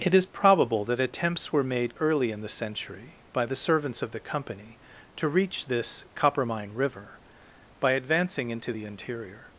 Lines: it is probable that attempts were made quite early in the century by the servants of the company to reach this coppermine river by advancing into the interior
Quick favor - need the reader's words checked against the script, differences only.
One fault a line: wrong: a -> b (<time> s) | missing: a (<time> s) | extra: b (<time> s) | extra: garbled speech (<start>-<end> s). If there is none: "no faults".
missing: quite (1.9 s)